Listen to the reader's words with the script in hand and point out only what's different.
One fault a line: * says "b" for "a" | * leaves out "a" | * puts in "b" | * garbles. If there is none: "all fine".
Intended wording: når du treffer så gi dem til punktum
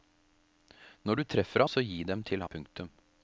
all fine